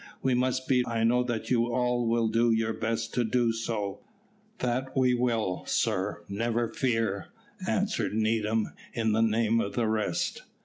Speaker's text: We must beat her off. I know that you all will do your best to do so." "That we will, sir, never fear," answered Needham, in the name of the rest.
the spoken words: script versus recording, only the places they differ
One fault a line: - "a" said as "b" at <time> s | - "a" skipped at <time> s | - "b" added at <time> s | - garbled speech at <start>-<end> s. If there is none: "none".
- "her off" skipped at 0.9 s